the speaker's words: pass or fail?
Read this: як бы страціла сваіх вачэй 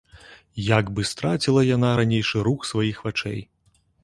fail